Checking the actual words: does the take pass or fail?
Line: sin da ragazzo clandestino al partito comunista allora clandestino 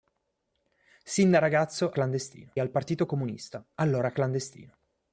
pass